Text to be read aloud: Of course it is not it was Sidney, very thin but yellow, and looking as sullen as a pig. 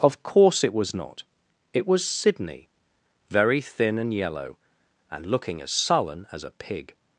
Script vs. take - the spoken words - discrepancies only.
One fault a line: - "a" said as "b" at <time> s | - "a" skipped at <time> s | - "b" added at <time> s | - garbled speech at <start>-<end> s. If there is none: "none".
- "is" said as "was" at 0.7 s
- "but" said as "and" at 4.0 s